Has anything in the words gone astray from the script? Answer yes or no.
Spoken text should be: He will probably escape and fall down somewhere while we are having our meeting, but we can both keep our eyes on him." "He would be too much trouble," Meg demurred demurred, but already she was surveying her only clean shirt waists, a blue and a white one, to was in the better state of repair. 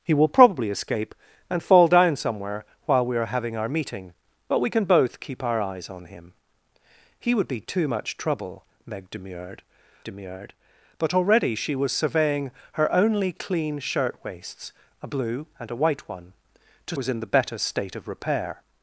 no